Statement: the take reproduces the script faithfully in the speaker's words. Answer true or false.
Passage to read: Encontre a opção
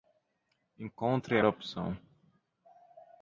true